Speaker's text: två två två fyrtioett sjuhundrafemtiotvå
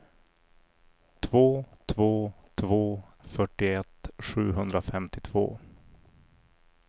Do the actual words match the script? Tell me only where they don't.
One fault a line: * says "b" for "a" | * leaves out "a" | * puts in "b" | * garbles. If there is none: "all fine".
all fine